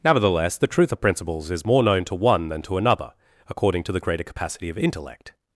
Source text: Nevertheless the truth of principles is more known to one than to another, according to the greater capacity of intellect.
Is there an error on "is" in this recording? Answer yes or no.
no